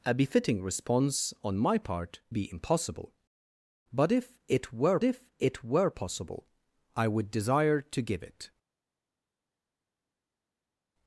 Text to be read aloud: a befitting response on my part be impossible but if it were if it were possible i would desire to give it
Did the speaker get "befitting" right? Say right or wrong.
right